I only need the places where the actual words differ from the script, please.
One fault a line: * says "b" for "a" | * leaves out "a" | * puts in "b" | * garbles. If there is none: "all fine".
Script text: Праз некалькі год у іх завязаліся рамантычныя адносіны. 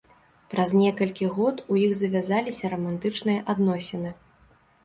all fine